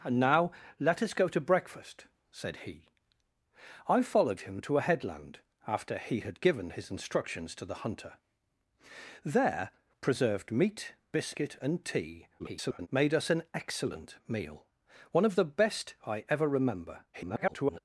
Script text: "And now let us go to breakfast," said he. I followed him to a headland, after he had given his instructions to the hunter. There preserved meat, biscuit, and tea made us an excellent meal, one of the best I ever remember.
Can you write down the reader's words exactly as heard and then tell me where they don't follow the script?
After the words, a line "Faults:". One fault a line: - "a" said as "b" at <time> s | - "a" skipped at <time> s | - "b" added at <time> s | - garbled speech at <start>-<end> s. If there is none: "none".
"And now let us go to breakfast," said he. I followed him to a headland, after he had given his instructions to the hunter. There preserved meat, biscuit, and tea [garbled] made us an excellent meal, one of the best I ever remember. [garbled]
Faults:
- garbled speech at 12.4-12.9 s
- garbled speech at 17.1-17.8 s